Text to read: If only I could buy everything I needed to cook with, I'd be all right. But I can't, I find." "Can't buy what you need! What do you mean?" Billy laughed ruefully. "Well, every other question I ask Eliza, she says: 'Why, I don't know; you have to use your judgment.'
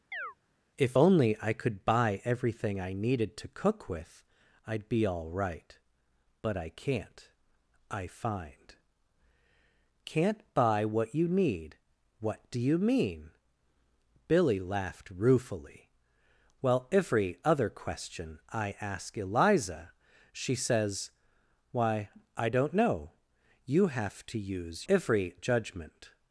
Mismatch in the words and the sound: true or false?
true